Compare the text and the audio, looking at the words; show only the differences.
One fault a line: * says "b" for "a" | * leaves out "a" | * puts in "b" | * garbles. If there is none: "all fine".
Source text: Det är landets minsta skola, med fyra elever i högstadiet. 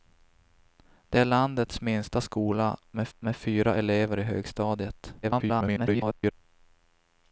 * puts in "med"
* garbles